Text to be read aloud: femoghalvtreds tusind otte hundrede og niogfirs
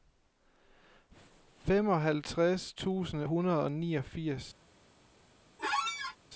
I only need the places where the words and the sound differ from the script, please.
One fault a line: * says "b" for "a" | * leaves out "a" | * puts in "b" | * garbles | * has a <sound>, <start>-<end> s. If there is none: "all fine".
* leaves out "otte"
* has a squeak, 5.6-6.2 s